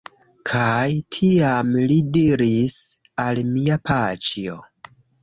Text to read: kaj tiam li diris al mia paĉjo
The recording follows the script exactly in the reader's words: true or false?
true